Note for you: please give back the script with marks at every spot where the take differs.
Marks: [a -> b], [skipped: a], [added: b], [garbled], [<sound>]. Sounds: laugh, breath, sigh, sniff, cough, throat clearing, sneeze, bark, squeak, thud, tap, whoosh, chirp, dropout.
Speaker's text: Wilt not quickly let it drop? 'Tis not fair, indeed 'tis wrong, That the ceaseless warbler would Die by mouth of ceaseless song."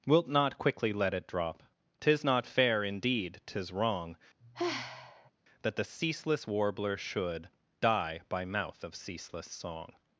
Wilt not quickly let it drop? 'Tis not fair, indeed 'tis wrong, [sigh] That the ceaseless warbler [would -> should] Die by mouth of ceaseless song."